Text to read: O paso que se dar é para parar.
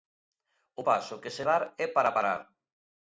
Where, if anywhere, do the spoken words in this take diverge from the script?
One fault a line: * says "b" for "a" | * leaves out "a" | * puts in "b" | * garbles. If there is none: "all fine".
all fine